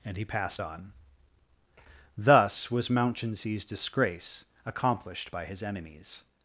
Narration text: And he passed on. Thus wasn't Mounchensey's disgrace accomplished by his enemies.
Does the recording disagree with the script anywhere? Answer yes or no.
yes